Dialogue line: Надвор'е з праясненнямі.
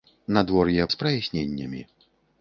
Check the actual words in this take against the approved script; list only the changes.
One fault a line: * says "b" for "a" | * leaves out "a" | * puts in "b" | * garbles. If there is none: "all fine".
all fine